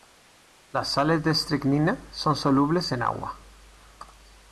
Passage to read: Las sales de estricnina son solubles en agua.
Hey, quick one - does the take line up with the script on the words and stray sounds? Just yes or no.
yes